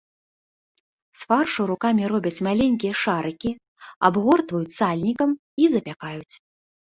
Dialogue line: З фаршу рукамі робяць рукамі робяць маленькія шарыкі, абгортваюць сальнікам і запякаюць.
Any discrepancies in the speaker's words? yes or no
yes